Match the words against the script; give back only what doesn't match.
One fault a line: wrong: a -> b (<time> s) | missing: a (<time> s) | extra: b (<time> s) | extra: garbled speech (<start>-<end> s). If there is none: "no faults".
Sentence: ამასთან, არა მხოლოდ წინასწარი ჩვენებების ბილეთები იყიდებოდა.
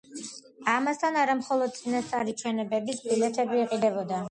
no faults